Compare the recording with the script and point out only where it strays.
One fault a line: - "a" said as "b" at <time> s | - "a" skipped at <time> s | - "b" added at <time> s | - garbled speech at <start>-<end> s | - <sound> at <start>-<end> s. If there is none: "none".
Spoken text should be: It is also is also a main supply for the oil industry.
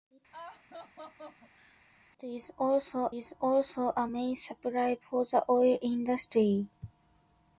- laugh at 0.3-1.8 s